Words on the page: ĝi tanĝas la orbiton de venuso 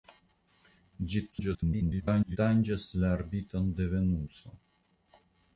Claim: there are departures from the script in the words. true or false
true